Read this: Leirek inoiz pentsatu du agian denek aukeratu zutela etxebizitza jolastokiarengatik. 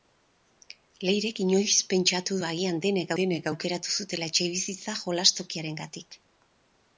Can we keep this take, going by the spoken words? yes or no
no